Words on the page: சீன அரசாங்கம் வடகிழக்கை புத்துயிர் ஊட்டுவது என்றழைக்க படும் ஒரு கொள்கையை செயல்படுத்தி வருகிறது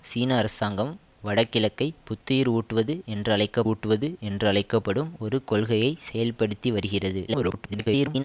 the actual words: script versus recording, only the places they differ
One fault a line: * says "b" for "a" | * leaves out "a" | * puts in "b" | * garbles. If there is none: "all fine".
* puts in "ஊட்டுவது என்றழைக்க"
* garbles